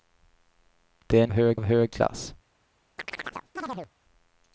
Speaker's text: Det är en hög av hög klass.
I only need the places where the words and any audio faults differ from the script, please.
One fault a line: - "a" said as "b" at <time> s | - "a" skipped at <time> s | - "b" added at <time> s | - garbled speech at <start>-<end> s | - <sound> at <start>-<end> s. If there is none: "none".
- chirp at 3.0-3.9 s